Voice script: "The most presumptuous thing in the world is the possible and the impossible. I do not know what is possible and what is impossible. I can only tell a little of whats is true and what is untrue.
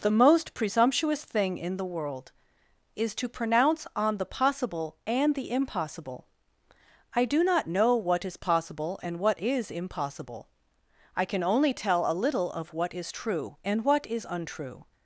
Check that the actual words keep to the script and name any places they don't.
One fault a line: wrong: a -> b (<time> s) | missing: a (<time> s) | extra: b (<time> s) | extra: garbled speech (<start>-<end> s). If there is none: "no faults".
extra: to pronounce on (3.1 s)
wrong: whats -> what (12.7 s)